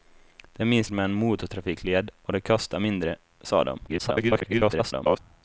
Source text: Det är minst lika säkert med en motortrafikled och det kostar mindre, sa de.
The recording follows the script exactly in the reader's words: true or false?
false